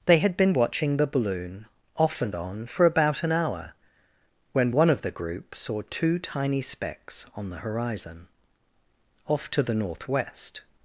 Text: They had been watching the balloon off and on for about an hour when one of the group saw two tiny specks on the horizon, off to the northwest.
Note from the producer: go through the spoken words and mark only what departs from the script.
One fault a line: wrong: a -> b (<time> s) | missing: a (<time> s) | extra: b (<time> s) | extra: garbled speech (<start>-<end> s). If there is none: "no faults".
no faults